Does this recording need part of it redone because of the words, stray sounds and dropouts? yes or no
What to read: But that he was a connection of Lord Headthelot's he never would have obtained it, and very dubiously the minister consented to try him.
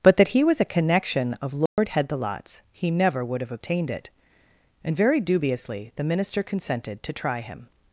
yes